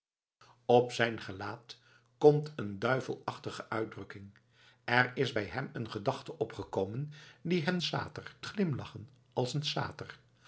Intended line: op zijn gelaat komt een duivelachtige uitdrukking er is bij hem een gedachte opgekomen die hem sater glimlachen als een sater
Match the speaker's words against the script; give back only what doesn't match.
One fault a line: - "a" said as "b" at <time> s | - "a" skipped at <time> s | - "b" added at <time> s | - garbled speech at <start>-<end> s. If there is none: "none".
none